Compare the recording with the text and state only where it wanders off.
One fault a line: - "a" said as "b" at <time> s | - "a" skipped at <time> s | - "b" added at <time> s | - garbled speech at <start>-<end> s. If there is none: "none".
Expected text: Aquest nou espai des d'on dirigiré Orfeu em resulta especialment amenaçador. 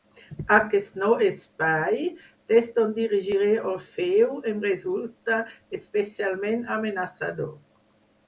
none